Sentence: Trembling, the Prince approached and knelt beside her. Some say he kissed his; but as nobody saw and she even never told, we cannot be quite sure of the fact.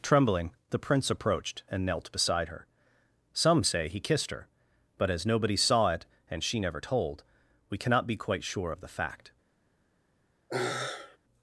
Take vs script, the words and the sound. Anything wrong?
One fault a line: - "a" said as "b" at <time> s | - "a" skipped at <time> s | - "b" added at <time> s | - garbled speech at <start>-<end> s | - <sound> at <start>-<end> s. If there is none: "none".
- "his" said as "her" at 4.3 s
- "it" added at 5.9 s
- "even" skipped at 6.6 s
- sigh at 10.5-11.2 s